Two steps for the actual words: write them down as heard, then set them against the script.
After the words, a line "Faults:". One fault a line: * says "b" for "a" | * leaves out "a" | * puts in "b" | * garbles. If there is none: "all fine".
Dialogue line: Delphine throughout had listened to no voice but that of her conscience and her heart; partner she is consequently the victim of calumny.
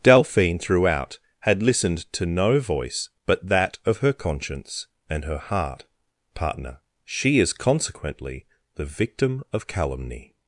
Delphine throughout had listened to no voice but that of her conscience and her heart; partner she is consequently the victim of calumny.
Faults:
all fine